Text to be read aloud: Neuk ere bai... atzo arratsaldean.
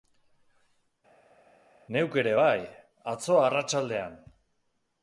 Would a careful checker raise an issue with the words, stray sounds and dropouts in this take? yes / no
no